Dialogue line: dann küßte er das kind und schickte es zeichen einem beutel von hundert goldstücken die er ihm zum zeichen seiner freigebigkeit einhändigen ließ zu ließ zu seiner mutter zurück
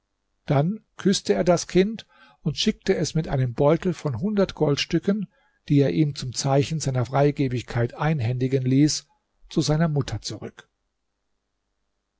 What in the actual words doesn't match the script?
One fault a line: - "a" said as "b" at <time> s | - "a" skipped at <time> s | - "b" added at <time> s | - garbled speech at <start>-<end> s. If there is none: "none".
- "zeichen" said as "mit" at 3.1 s
- "ließ zu" skipped at 9.6 s